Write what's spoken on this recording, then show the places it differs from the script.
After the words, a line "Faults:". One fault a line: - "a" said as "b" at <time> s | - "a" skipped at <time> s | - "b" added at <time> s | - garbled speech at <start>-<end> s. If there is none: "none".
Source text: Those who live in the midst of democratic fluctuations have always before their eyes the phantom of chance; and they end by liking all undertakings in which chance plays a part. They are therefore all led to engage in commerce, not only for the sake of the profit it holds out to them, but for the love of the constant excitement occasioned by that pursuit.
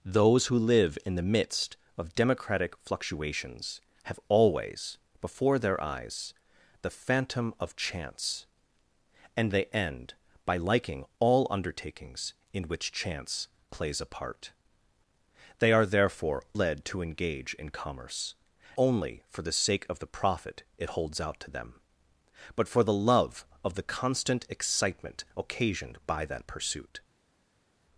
Those who live in the midst of democratic fluctuations have always before their eyes the phantom of chance; and they end by liking all undertakings in which chance plays a part. They are therefore led to engage in commerce, only for the sake of the profit it holds out to them, but for the love of the constant excitement occasioned by that pursuit.
Faults:
- "all" skipped at 16.4 s
- "not" skipped at 18.3 s